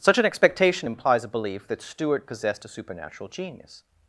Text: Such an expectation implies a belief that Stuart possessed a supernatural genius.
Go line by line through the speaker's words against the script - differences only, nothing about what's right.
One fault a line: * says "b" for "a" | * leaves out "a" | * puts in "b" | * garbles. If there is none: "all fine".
all fine